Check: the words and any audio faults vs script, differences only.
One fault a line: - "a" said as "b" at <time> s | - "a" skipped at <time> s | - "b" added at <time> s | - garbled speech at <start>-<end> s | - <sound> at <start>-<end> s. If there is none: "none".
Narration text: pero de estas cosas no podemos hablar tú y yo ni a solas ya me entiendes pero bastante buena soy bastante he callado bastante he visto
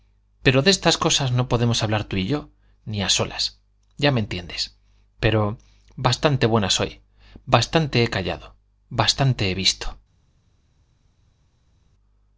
none